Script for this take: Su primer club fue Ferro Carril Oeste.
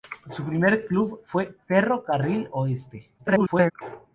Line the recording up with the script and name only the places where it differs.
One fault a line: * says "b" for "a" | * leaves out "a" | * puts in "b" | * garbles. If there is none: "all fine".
* garbles